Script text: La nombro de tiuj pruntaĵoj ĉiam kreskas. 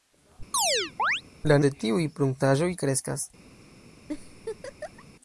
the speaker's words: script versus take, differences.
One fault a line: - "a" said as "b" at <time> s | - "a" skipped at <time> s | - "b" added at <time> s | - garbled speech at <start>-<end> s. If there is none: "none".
- "nombro" skipped at 1.6 s
- "ĉiam" skipped at 2.7 s